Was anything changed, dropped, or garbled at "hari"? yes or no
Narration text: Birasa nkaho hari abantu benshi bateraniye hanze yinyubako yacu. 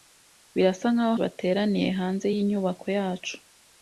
yes